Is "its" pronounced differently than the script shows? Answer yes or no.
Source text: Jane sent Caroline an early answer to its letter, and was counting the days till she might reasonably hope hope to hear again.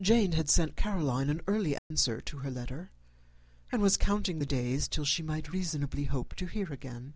yes